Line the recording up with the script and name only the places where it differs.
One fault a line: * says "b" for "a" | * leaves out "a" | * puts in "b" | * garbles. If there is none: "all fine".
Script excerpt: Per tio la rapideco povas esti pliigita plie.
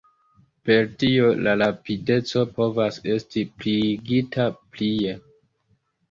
all fine